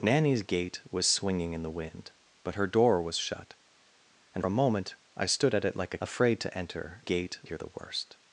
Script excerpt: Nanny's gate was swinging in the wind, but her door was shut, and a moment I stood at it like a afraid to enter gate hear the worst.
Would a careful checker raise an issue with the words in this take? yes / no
no